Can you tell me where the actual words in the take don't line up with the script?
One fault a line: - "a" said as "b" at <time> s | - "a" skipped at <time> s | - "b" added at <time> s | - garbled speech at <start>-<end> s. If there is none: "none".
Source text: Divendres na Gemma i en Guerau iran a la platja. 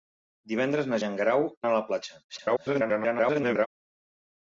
- "Gemma" skipped at 1.0 s
- "iran" skipped at 1.4 s
- garbled speech at 2.3-3.7 s